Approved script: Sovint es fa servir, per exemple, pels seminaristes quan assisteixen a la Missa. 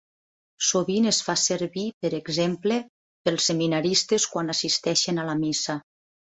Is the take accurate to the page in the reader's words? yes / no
yes